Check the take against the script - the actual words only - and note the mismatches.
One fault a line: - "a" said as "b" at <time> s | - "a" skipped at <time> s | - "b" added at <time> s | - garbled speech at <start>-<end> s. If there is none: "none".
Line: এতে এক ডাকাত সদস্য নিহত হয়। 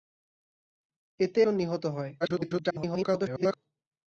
- "এক ডাকাত সদস্য" skipped at 1.4 s
- garbled speech at 2.2-3.6 s